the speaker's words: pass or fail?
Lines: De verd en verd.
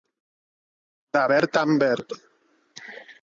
pass